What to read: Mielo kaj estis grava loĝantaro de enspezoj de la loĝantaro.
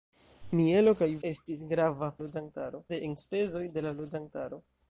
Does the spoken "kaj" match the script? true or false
true